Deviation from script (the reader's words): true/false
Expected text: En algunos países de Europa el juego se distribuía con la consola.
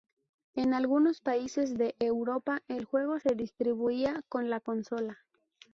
false